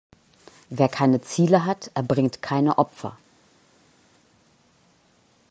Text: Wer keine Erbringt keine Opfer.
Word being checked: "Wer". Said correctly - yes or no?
yes